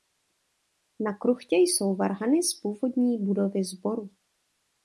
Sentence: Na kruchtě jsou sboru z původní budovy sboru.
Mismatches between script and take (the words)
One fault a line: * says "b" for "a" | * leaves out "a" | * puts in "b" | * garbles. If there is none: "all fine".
* says "varhany" for "sboru"